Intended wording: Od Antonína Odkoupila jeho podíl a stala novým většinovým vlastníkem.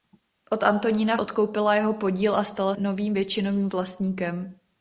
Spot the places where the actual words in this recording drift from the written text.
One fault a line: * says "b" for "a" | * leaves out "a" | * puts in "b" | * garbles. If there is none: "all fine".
all fine